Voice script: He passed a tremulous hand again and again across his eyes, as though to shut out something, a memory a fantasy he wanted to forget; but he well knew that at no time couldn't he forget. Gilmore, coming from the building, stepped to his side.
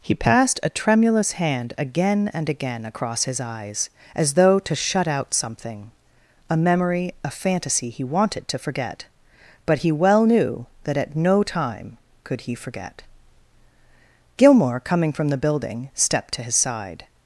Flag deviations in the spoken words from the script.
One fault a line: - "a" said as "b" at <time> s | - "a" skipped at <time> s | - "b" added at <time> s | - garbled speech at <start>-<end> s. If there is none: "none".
- "couldn't" said as "could" at 12.2 s